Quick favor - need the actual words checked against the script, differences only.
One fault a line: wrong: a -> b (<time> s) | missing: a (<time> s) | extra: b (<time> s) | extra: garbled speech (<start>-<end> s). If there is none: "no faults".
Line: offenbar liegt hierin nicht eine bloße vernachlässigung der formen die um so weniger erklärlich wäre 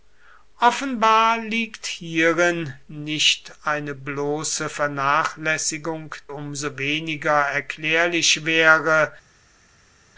missing: der formen die (6.2 s)